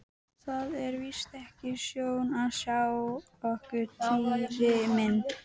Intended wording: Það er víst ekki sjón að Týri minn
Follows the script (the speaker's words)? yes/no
no